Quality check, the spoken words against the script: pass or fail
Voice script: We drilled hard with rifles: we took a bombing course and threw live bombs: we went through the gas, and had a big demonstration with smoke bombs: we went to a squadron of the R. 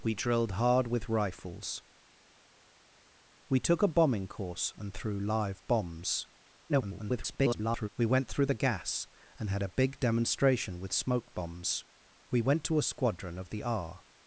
fail